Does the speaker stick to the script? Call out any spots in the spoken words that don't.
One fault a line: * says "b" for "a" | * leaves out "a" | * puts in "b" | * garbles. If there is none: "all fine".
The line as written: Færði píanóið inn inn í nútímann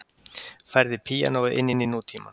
all fine